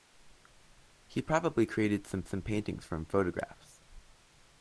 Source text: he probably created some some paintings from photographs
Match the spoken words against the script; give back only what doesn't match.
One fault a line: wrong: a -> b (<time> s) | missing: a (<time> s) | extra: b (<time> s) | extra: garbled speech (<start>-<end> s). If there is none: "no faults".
no faults